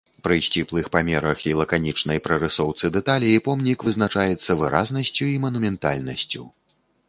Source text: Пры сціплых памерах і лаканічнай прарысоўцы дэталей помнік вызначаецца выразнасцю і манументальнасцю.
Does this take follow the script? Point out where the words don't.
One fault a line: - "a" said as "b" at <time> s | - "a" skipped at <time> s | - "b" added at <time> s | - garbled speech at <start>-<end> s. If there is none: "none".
none